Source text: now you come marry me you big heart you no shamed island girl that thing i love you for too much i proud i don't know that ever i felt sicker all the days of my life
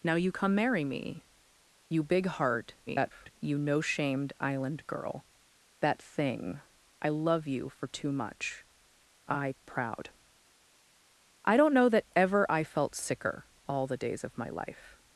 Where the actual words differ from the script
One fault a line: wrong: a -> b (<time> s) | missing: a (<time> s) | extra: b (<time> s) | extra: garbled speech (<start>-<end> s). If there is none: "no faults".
extra: garbled speech (2.9-3.3 s)